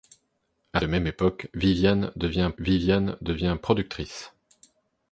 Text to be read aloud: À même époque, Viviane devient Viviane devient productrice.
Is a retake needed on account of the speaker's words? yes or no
no